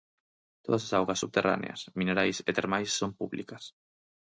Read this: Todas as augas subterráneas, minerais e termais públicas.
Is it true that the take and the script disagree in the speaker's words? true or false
true